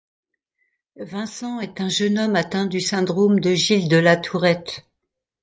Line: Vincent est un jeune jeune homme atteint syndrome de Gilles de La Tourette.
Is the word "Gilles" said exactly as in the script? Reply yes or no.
yes